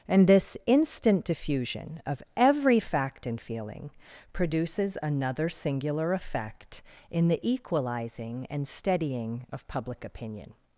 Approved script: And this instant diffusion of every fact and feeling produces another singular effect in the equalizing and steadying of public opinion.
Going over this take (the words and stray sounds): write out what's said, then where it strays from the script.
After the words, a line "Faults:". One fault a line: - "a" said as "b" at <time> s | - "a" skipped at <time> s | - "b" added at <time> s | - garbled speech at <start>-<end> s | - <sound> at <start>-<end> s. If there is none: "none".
And this instant diffusion of every fact and feeling produces another singular effect in the equalizing and steadying of public opinion.
Faults:
none